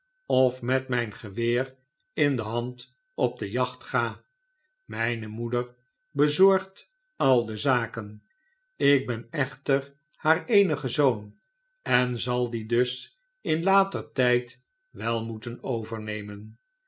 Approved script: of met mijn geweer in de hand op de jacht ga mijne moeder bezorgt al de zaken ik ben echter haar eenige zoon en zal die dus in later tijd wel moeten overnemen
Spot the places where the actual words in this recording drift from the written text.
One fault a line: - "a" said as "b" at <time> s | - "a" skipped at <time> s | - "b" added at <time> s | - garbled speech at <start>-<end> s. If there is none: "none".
none